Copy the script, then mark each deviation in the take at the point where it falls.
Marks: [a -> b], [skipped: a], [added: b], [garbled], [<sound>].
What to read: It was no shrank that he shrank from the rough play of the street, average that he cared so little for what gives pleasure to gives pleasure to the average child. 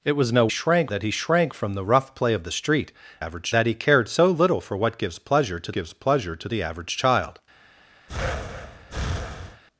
It was no shrank that he shrank from the rough play of the street, average that he cared so little for what gives pleasure to gives pleasure to the average child. [breath]